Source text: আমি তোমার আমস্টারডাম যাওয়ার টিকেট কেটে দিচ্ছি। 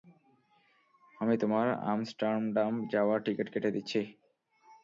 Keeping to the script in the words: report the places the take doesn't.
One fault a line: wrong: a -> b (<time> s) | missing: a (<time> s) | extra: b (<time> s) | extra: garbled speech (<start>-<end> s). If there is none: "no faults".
no faults